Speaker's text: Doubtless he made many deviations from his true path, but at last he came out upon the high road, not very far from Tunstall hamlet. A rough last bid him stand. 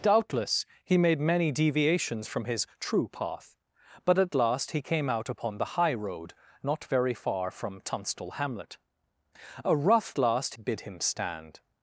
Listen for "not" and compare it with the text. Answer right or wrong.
right